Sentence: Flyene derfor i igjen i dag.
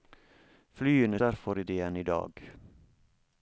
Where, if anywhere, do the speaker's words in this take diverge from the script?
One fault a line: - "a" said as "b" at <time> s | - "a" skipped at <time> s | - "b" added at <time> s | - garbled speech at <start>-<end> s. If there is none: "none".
none